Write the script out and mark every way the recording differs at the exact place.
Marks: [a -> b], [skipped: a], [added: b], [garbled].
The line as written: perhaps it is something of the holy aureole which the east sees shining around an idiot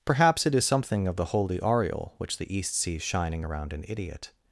perhaps it is something of the holy aureole which the east sees shining around an idiot